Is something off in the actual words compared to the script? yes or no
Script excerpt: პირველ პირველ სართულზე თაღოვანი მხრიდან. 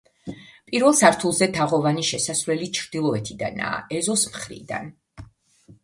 yes